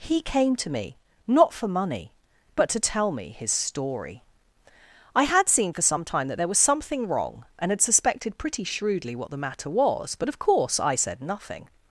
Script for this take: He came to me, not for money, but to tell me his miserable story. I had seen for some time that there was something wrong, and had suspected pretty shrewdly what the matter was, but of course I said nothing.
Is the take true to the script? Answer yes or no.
no